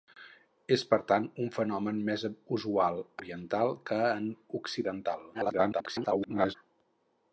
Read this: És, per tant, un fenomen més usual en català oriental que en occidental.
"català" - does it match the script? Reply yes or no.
no